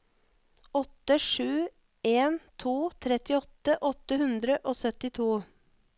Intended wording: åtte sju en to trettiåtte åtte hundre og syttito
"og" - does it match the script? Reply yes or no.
yes